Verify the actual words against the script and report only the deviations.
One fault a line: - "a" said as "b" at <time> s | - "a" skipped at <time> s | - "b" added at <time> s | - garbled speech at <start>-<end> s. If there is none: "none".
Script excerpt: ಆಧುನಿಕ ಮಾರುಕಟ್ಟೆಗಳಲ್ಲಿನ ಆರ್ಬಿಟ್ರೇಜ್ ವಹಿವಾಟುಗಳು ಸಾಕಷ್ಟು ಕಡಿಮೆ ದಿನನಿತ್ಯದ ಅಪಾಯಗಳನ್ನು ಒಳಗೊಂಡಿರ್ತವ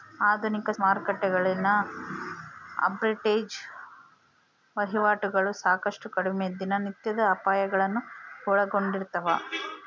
none